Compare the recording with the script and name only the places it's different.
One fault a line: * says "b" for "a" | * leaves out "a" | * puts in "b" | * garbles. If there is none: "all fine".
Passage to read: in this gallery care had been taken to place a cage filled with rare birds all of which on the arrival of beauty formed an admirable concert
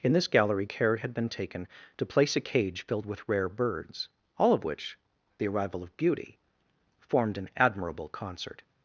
* leaves out "on"